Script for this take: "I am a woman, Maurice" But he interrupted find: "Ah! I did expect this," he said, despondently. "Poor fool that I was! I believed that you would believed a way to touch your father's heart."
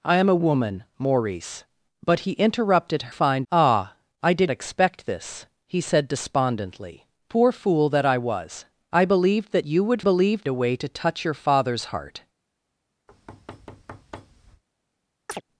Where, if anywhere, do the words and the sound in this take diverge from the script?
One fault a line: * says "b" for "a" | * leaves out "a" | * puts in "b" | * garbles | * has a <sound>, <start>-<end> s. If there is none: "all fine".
* has a thud, 13.1-14.6 s
* has a chirp, 15.3-15.4 s